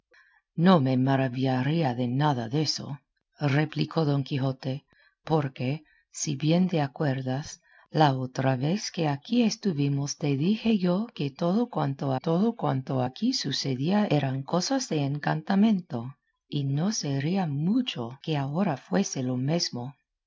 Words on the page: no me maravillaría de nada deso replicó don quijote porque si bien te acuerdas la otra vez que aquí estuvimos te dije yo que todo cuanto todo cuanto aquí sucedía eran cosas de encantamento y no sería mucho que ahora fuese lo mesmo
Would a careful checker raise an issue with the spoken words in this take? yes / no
no